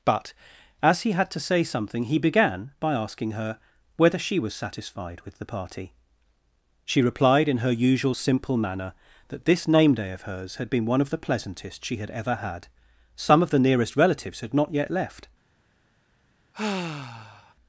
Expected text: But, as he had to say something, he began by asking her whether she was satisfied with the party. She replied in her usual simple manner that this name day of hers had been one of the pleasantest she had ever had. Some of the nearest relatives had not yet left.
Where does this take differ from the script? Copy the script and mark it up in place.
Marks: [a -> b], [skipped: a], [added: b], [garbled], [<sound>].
But, as he had to say something, he began by asking her whether she was satisfied with the party. She replied in her usual simple manner that this name day of hers had been one of the pleasantest she had ever had. Some of the nearest relatives had not yet left. [sigh]